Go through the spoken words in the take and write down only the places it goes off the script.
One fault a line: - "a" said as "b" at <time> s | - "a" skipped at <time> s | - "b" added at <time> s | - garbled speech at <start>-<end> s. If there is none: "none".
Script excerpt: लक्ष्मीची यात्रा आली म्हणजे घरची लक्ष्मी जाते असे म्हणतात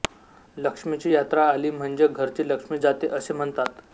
none